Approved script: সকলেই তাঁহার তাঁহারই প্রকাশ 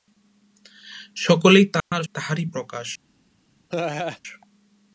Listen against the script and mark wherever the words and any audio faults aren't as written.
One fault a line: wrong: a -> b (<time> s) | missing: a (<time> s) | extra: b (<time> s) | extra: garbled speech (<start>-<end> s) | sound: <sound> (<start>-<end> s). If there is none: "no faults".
sound: dropout (1.8-1.9 s)
sound: laugh (3.7-4.2 s)